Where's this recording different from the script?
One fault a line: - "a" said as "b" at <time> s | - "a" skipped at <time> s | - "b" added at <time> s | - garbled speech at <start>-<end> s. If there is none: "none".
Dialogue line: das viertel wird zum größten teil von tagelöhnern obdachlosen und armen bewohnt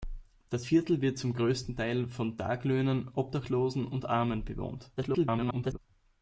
- garbled speech at 5.0-5.8 s